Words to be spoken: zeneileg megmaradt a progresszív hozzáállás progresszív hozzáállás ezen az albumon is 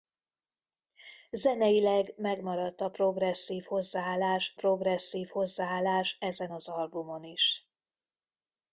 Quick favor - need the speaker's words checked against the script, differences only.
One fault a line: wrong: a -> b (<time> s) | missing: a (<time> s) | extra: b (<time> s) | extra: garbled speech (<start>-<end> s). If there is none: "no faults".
no faults